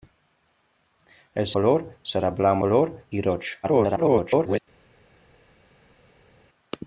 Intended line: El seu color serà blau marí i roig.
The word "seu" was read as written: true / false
false